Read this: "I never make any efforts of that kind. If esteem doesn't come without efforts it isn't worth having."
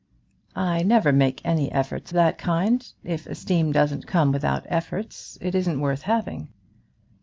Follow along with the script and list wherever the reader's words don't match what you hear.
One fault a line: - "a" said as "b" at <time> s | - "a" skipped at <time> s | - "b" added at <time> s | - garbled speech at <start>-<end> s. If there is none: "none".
- "of" skipped at 2.1 s